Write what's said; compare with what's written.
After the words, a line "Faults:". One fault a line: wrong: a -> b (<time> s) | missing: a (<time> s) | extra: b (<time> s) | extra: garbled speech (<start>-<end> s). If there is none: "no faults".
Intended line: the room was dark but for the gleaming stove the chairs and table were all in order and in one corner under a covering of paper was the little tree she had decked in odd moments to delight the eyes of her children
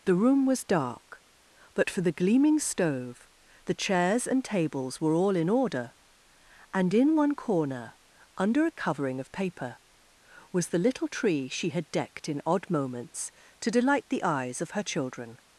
the room was dark but for the gleaming stove the chairs and tables were all in order and in one corner under a covering of paper was the little tree she had decked in odd moments to delight the eyes of her children
Faults:
wrong: table -> tables (4.4 s)